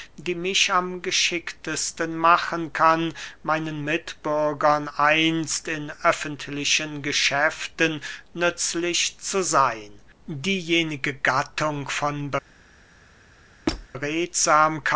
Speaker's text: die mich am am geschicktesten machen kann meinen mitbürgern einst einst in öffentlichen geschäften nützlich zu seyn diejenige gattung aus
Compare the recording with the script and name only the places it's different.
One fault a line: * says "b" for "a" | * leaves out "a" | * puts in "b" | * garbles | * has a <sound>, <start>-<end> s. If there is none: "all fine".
* leaves out "am"
* leaves out "einst"
* says "von" for "aus"
* has a squeak, 13.7-13.9 s